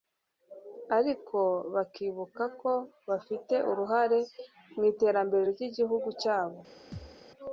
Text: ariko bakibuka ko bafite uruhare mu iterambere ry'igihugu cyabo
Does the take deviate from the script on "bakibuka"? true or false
false